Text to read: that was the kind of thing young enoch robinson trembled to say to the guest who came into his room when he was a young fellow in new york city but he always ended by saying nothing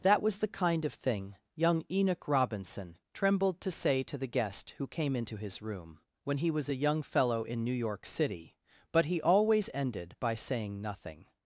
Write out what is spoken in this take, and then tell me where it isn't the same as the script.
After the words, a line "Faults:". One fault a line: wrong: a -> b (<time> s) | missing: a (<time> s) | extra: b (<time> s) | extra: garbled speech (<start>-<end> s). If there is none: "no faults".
that was the kind of thing young enoch robinson trembled to say to the guest who came into his room when he was a young fellow in new york city but he always ended by saying nothing
Faults:
no faults